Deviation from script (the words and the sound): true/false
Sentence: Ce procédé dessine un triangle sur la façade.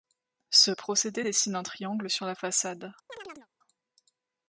true